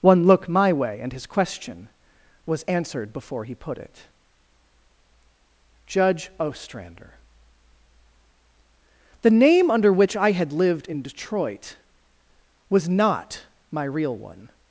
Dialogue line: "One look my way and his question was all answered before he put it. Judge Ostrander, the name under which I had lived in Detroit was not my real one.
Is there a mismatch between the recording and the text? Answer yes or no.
yes